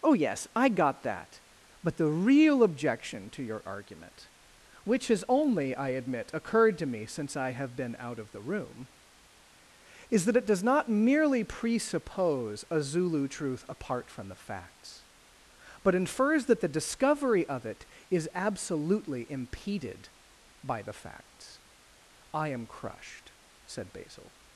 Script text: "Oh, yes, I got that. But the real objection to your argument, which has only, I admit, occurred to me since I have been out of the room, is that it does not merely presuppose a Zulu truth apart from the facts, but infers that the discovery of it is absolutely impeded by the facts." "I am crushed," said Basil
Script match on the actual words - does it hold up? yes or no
yes